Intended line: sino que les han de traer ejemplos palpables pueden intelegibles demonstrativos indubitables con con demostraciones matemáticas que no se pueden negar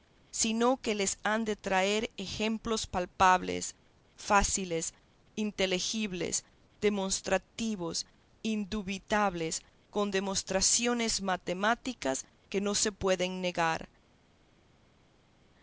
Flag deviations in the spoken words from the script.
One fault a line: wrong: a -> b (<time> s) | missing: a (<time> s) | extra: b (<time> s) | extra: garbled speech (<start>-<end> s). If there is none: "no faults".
wrong: pueden -> fáciles (4.2 s)
missing: con (10.1 s)